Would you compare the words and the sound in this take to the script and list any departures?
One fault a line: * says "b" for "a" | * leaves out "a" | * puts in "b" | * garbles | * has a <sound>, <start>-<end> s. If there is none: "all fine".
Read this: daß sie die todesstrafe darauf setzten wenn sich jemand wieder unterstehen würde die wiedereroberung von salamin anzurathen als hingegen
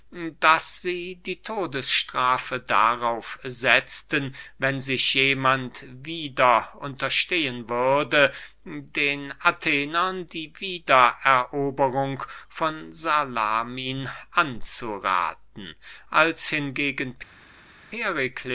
* puts in "den athenern"